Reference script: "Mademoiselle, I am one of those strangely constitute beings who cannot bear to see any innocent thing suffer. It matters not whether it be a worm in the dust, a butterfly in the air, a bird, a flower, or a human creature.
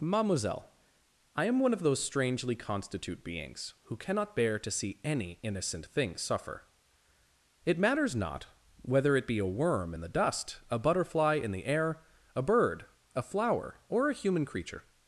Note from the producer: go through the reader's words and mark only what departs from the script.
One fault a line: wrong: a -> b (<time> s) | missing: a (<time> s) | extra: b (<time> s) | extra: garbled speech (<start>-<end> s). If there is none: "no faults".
no faults